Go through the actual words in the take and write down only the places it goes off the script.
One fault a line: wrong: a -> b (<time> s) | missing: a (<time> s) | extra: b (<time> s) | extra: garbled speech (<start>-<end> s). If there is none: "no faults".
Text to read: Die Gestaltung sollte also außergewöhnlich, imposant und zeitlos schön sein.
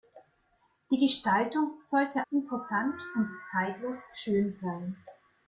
missing: also außergewöhnlich (2.2 s)